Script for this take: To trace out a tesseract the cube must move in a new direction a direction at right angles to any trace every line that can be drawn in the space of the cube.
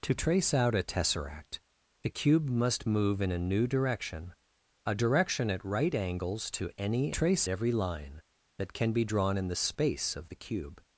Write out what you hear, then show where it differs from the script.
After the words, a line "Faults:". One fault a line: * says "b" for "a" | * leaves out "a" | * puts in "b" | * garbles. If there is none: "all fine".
To trace out a tesseract the cube must move in a new direction a direction at right angles to any trace every line that can be drawn in the space of the cube.
Faults:
all fine